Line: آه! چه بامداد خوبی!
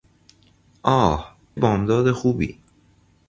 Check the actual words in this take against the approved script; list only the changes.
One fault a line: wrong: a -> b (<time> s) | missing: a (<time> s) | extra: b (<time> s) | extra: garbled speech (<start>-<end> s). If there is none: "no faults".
missing: چه (1.4 s)